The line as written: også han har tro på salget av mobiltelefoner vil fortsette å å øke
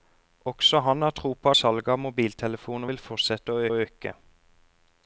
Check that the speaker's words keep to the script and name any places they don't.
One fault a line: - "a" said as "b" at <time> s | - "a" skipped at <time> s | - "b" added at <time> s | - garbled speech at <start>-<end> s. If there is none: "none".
none